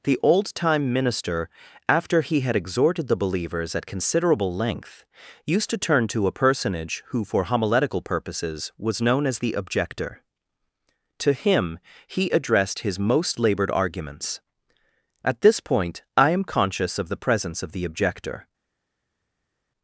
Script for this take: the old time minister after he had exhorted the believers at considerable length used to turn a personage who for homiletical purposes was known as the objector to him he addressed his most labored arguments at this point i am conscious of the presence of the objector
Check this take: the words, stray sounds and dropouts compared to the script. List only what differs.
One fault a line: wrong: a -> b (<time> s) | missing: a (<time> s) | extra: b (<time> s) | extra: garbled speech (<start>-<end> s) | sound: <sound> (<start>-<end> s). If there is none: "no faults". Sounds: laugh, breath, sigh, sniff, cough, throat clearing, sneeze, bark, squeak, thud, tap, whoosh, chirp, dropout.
extra: to (6.1 s)